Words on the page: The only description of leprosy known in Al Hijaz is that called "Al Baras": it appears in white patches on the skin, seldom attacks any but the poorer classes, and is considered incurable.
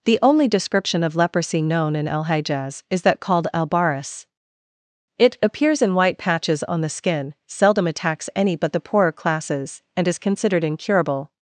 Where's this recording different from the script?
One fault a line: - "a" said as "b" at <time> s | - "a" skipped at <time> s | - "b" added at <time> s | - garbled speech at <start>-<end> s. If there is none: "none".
none